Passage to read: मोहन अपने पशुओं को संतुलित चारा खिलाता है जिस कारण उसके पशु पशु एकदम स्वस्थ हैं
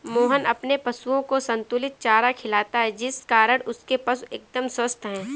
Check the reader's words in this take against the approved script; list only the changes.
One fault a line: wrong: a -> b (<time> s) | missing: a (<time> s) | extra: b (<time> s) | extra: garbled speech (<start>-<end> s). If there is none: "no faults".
missing: पशु (4.2 s)